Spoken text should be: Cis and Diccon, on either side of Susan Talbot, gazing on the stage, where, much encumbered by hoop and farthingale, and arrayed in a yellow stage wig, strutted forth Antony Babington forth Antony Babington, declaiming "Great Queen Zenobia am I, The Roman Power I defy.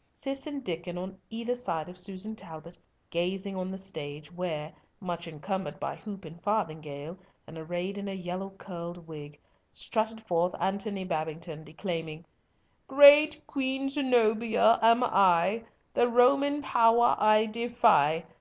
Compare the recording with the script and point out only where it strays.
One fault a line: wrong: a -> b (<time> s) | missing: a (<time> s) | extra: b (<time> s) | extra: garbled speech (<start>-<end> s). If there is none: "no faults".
wrong: stage -> curled (8.5 s)
missing: forth Antony Babington (11.6 s)